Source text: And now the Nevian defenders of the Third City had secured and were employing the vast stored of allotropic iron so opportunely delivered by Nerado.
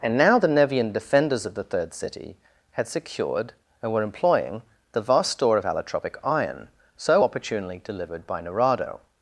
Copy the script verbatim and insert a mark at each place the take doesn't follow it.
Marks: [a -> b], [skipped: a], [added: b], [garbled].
And now the Nevian defenders of the Third City had secured and were employing the vast [stored -> store] of allotropic iron so opportunely delivered by Nerado.